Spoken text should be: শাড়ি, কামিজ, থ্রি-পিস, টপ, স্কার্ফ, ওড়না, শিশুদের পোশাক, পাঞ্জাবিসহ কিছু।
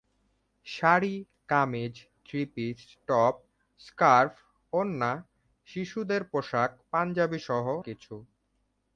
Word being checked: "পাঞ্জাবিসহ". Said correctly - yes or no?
yes